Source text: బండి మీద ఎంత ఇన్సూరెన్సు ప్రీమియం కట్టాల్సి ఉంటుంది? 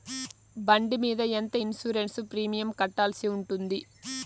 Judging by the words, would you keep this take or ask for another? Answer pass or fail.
pass